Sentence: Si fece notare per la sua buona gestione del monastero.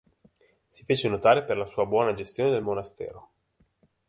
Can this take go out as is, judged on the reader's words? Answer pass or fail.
pass